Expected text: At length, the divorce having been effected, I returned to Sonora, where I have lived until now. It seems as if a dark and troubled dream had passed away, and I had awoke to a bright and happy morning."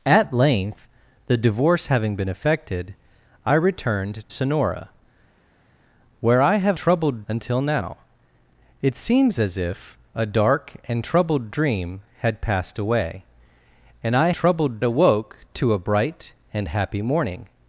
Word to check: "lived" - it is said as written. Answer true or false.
false